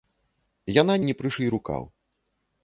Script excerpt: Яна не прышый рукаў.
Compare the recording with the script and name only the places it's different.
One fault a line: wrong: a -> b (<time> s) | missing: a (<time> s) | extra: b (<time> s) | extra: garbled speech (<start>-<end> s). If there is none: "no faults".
no faults